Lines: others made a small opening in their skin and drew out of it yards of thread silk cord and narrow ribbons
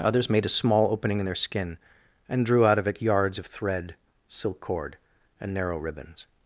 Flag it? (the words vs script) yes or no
no